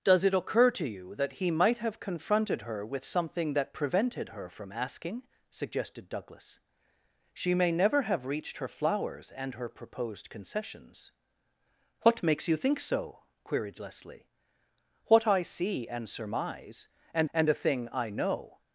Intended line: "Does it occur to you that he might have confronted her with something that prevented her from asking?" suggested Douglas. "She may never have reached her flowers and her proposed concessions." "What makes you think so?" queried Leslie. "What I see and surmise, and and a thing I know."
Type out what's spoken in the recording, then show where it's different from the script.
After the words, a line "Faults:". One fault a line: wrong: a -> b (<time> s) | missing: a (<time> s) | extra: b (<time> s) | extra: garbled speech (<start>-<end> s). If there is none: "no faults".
"Does it occur to you that he might have confronted her with something that prevented her from asking?" suggested Douglas. "She may never have reached her flowers and her proposed concessions." "What makes you think so?" queried Leslie. "What I see and surmise, and and a thing I know."
Faults:
no faults